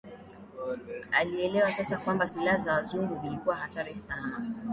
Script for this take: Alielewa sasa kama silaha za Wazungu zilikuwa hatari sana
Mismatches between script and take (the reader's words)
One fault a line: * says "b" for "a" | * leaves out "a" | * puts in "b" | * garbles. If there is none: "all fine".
* says "kwamba" for "kama"